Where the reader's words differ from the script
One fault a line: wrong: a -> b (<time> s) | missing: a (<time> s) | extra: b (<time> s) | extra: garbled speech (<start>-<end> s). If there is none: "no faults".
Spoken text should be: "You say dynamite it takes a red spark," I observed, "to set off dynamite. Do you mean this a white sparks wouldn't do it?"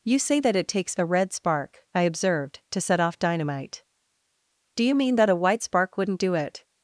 wrong: dynamite -> that (0.4 s)
wrong: this -> that (5.2 s)
wrong: sparks -> spark (5.6 s)